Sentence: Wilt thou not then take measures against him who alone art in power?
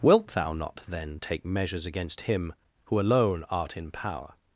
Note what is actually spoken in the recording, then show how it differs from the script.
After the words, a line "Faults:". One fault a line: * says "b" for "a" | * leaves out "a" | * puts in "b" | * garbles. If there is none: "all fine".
Wilt thou not then take measures against him who alone art in power?
Faults:
all fine